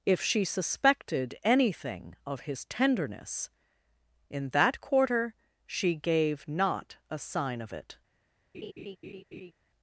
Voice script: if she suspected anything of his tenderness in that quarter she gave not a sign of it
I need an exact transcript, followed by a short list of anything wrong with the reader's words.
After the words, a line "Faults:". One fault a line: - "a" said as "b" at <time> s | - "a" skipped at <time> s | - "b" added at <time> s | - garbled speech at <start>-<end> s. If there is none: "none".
if she suspected anything of his tenderness in that quarter she gave not a sign of it
Faults:
none